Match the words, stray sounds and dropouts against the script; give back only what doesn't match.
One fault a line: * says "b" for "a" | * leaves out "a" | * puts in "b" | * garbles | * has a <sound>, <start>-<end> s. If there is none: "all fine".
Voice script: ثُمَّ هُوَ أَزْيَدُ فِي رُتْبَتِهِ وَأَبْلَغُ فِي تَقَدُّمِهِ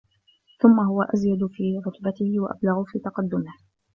all fine